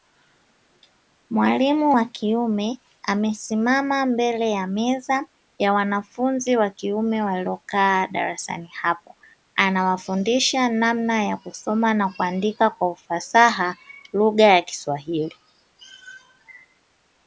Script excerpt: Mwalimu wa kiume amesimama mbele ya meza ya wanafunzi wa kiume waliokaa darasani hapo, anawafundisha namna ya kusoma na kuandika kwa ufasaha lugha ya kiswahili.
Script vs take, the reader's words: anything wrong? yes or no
no